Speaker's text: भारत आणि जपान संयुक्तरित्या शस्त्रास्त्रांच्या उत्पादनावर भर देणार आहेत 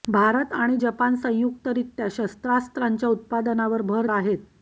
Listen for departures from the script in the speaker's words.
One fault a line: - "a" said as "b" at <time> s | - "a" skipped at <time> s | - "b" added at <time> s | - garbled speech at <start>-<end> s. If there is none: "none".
- "देणार" skipped at 4.1 s